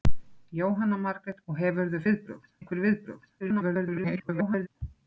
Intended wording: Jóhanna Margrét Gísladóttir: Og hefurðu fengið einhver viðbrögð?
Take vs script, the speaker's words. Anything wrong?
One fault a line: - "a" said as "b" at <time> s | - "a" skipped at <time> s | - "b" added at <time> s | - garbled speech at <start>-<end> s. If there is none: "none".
- "Gísladóttir" skipped at 1.4 s
- "fengið" said as "viðbrögð" at 2.1 s
- garbled speech at 3.4-4.7 s